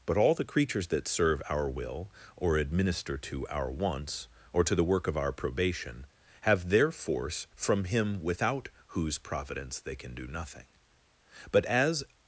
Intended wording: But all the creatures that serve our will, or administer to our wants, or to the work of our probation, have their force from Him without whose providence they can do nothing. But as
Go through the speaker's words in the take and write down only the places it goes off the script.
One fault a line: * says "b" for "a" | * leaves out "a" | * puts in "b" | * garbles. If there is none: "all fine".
all fine